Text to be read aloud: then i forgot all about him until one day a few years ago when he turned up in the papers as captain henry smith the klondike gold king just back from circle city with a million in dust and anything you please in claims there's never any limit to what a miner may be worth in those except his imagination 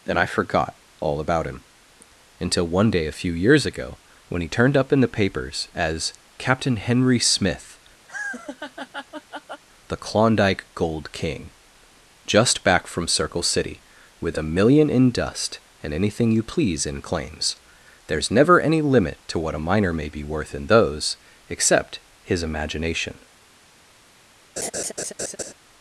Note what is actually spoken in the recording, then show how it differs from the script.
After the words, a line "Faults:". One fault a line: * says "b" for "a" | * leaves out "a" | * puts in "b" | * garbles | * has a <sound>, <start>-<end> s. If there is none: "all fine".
and i forgot all about him until one day a few years ago when he turned up in the papers as captain henry smith the klondike gold king just back from circle city with a million in dust and anything you please in claims there's never any limit to what a miner may be worth in those except his imagination
Faults:
* says "and" for "then"
* has a laugh, 8.1-9.6 s
* has a laugh, 24.6-25.5 s